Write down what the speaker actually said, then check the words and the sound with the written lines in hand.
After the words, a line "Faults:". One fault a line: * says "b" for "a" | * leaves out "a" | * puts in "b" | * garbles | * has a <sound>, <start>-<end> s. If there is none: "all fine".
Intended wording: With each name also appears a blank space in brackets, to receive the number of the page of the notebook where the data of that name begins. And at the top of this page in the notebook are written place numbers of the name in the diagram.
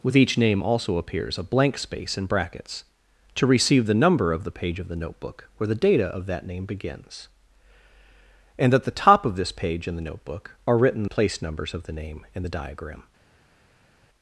With each name also appears a blank space in brackets, to receive the number of the page of the notebook where the data of that name begins. And at the top of this page in the notebook are written place numbers of the name in the diagram.
Faults:
all fine